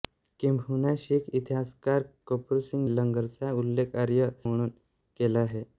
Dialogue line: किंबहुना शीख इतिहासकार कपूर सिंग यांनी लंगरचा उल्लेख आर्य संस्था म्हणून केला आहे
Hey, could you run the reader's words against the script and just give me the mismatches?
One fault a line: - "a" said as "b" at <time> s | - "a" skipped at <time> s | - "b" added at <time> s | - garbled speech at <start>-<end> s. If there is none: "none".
- "यांनी" skipped at 2.9 s
- "संस्था" skipped at 4.3 s